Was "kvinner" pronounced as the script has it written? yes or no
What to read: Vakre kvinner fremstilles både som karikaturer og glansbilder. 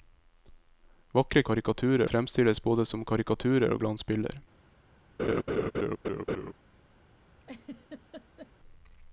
no